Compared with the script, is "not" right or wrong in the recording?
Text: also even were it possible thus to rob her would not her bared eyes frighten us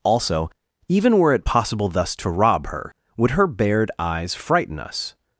wrong